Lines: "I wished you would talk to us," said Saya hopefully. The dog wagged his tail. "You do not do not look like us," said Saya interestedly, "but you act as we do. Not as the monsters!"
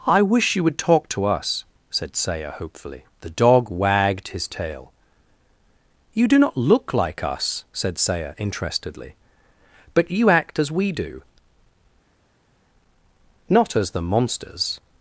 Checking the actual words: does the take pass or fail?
fail